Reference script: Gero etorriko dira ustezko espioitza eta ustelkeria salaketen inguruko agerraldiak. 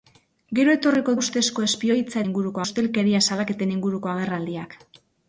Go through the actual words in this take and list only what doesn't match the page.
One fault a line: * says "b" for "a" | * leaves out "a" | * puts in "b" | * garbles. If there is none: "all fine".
* leaves out "dira"
* says "inguruko" for "eta"